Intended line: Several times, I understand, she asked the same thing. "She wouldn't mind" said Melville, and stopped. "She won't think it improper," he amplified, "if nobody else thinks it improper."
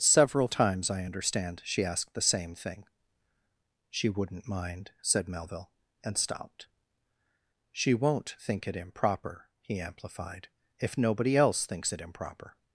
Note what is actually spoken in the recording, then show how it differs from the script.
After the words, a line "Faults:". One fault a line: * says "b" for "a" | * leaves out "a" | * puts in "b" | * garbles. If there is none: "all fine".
Several times, I understand, she asked the same thing. "She wouldn't mind" said Melville, and stopped. "She won't think it improper," he amplified, "if nobody else thinks it improper."
Faults:
all fine